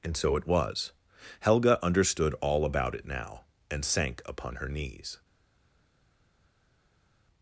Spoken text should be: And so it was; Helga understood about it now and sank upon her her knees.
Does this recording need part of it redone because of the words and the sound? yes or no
yes